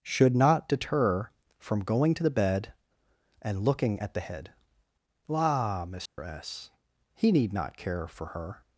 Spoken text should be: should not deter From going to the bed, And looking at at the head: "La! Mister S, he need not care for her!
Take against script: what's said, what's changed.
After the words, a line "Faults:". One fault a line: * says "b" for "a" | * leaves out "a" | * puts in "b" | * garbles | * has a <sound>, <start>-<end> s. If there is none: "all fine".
should not deter From going to the bed, And looking at the head: "La! Mister S, he need not care for her!
Faults:
* leaves out "at"
* has a dropout, 6.1-6.2 s